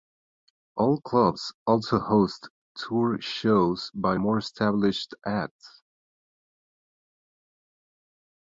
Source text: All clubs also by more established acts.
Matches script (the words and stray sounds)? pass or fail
fail